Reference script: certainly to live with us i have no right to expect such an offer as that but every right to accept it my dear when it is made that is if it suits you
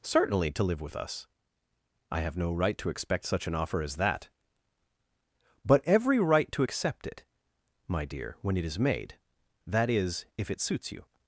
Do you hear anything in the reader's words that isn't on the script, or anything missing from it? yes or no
no